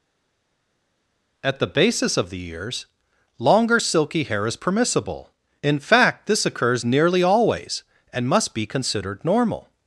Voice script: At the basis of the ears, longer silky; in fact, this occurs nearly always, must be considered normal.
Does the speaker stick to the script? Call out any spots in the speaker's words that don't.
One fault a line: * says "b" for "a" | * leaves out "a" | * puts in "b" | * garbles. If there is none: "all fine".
* puts in "hair is permissible"
* puts in "and"